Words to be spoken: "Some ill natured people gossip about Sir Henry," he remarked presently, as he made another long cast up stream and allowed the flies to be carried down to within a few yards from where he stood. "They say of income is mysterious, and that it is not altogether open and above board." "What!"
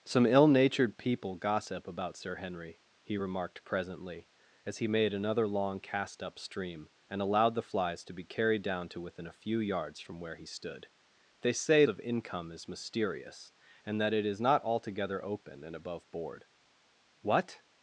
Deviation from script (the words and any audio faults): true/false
false